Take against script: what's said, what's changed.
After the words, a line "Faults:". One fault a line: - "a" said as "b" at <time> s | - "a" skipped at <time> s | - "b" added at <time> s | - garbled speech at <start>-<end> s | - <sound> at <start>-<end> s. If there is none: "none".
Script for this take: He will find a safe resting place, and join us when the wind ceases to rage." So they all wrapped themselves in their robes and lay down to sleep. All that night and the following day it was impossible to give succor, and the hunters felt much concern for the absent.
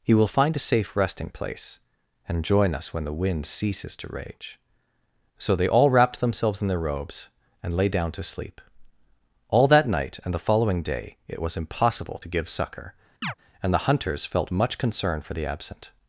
He will find a safe resting place, and join us when the wind ceases to rage." So they all wrapped themselves in their robes and lay down to sleep. All that night and the following day it was impossible to give succor, and the hunters felt much concern for the absent.
Faults:
- chirp at 13.2-13.3 s